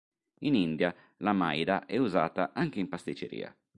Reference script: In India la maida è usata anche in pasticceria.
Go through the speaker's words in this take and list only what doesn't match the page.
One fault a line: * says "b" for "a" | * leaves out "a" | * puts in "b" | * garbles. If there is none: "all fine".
all fine